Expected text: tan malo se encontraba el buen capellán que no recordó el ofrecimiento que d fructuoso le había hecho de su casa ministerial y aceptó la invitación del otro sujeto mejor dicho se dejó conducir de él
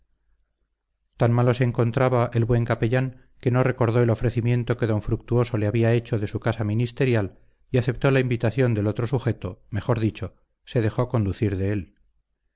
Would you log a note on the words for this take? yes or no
no